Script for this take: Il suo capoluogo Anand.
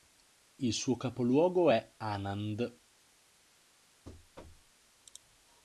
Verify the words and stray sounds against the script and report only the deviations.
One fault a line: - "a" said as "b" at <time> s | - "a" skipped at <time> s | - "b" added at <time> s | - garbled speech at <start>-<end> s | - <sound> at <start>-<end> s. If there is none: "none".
- "è" added at 1.7 s
- thud at 4.0-4.7 s